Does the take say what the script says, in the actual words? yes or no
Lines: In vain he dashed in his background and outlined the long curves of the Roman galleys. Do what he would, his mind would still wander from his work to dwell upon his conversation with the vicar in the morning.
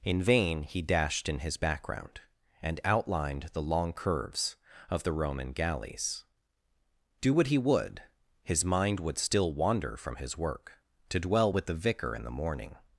no